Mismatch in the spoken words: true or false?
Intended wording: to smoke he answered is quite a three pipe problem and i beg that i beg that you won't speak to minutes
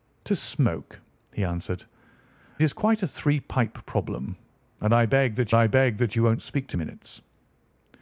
false